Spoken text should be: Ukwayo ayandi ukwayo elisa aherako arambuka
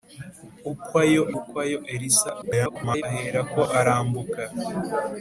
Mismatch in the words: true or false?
true